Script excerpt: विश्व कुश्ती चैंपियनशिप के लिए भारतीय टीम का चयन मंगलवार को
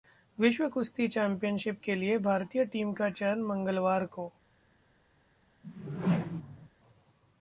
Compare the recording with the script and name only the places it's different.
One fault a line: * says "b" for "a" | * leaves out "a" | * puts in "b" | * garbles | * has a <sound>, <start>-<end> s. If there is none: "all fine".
* has a whoosh, 5.6-6.7 s